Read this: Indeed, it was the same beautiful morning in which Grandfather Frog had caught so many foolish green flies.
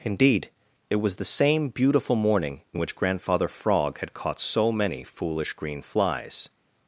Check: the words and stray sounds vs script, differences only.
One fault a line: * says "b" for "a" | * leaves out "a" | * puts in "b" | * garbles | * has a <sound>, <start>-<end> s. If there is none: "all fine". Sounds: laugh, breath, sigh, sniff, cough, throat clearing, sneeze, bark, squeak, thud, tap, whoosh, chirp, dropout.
all fine